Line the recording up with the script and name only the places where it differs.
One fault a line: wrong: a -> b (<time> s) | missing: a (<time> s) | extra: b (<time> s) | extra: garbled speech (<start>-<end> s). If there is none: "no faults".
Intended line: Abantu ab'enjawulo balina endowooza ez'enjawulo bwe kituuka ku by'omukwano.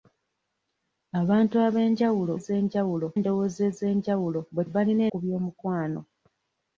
wrong: balina -> ez'enjawulo (2.4 s)
wrong: kituuka -> balina (4.7 s)